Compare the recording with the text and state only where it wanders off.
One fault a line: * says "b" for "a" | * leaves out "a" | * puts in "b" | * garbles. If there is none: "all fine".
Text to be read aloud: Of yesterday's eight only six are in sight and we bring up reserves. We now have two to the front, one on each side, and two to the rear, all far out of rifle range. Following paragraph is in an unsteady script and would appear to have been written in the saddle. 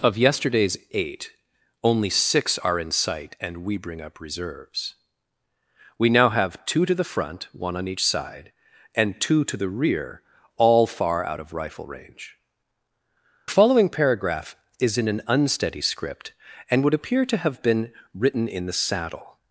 all fine